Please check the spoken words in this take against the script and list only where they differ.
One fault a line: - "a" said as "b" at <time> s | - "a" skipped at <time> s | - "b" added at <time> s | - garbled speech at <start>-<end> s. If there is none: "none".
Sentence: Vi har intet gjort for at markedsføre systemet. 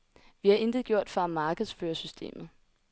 none